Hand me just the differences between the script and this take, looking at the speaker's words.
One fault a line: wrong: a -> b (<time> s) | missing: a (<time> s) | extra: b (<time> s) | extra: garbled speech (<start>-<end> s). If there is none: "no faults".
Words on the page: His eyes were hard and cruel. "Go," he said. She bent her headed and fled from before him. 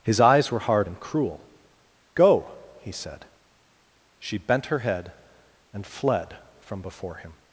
wrong: headed -> head (4.8 s)